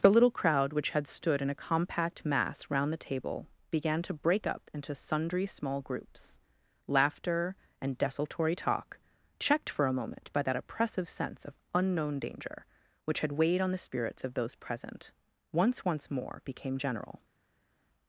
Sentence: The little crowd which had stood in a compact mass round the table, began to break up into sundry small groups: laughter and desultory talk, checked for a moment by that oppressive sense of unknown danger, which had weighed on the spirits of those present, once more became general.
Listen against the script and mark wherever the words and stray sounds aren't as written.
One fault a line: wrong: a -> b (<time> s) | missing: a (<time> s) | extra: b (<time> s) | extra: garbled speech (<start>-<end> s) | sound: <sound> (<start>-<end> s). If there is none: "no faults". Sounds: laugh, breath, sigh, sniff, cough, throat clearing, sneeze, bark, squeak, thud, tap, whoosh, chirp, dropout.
extra: once (15.8 s)